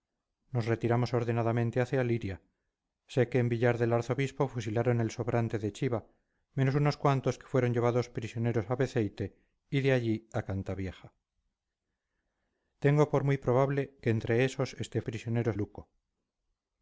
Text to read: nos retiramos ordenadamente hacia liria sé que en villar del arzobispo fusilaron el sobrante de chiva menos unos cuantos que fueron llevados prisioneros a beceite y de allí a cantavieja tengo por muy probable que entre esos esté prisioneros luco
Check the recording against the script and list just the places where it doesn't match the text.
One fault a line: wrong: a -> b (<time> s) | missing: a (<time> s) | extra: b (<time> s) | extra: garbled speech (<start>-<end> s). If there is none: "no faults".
no faults